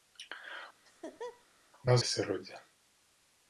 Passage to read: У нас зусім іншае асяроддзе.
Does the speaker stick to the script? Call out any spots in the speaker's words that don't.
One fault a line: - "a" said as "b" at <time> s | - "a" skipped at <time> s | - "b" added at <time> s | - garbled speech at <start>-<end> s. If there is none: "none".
- "зусім іншае" skipped at 2.0 s